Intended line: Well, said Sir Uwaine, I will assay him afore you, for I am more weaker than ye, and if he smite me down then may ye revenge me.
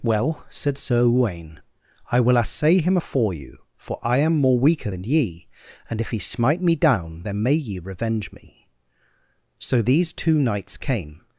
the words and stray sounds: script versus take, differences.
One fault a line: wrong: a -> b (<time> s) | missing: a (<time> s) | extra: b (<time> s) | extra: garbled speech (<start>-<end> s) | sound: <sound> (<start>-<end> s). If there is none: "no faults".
extra: So these two knights came (9.6 s)